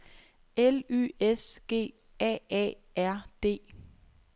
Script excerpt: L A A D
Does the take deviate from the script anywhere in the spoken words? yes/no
yes